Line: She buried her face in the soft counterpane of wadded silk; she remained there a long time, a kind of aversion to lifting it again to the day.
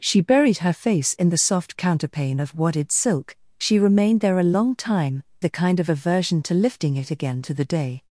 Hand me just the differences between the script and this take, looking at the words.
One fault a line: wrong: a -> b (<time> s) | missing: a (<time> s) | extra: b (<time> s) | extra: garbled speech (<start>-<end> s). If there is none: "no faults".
no faults